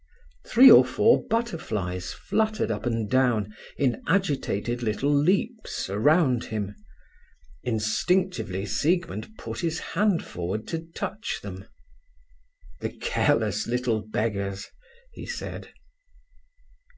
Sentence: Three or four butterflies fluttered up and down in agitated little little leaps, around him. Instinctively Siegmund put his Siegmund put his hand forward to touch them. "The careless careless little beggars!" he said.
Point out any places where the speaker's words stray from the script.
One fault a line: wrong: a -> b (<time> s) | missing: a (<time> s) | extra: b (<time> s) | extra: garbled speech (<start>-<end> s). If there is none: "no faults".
missing: little (5.1 s)
missing: Siegmund put his (9.8 s)
missing: careless (13.7 s)